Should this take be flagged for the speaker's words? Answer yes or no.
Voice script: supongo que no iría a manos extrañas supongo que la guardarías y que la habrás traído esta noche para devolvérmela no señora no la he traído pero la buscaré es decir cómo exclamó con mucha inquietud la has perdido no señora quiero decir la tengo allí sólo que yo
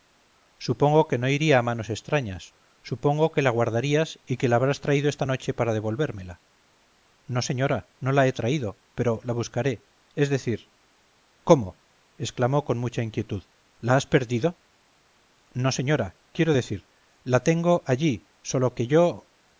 no